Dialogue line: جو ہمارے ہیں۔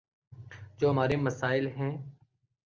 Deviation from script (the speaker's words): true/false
true